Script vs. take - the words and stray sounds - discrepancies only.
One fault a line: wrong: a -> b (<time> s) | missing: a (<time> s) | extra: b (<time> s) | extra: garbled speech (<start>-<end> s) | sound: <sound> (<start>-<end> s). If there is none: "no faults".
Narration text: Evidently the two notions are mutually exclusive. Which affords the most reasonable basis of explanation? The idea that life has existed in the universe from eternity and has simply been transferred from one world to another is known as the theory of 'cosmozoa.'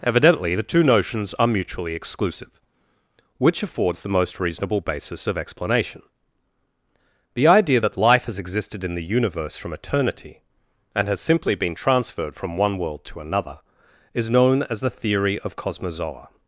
no faults